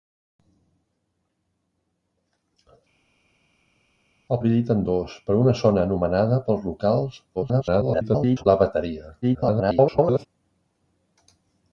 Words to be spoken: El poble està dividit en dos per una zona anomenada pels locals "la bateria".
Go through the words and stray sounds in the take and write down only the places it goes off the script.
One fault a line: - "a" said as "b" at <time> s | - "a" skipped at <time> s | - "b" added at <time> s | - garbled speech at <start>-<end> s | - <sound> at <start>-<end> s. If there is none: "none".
- "poble està" skipped at 4.4 s
- garbled speech at 7.4-8.5 s
- garbled speech at 9.2-10.3 s